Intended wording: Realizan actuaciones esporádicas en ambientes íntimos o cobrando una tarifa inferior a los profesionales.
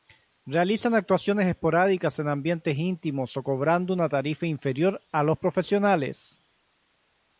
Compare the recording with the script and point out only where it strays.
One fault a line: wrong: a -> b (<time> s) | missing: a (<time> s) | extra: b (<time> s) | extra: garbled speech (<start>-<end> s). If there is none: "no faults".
no faults